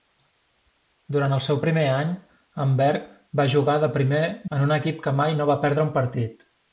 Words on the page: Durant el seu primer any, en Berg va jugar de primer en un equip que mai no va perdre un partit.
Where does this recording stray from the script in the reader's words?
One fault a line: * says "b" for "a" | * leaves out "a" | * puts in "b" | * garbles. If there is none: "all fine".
all fine